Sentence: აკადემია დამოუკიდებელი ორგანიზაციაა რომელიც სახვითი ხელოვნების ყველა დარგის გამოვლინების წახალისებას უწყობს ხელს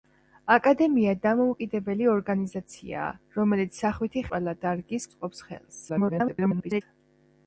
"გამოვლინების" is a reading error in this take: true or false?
true